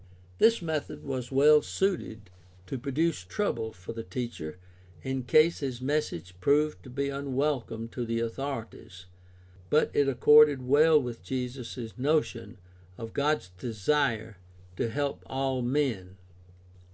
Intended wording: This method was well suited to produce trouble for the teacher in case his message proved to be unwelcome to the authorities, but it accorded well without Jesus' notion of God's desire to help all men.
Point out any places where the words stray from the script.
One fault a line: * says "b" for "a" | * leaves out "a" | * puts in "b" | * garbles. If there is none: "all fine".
* says "with" for "without"